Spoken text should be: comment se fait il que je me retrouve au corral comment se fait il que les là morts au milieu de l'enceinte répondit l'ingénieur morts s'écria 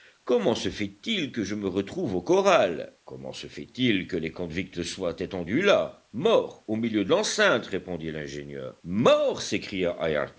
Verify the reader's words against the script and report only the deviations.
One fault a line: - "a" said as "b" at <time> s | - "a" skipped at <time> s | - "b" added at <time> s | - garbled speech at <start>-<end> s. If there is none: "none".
- "convicts soient étendus" added at 4.3 s